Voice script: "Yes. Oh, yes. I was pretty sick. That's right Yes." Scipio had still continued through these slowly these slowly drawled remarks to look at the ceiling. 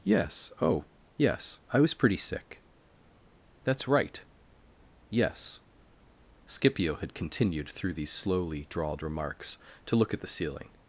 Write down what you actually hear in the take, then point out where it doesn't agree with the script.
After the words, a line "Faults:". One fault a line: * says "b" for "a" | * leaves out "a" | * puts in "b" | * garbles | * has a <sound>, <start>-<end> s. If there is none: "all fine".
"Yes. Oh, yes. I was pretty sick. That's right Yes." Scipio had continued through these slowly drawled remarks to look at the ceiling.
Faults:
* leaves out "still"
* leaves out "these slowly"